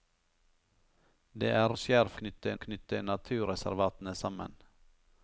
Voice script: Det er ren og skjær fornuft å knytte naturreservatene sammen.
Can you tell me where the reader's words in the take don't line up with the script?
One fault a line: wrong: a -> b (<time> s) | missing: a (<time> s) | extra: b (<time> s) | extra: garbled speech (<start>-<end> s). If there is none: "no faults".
missing: ren (1.7 s)
wrong: fornuft -> knytte (2.2 s)